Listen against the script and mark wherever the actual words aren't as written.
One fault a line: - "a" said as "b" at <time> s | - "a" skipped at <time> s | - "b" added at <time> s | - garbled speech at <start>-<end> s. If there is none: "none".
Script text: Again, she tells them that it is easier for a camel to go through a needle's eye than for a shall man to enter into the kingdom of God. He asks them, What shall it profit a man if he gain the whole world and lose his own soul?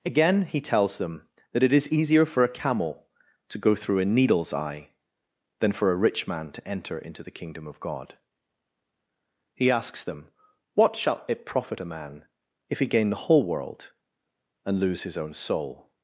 - "she" said as "he" at 0.4 s
- "shall" said as "rich" at 6.0 s